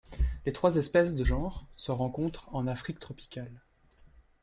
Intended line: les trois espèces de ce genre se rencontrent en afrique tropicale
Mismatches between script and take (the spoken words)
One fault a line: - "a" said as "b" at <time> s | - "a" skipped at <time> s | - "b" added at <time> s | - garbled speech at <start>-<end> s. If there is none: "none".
- "ce" skipped at 1.2 s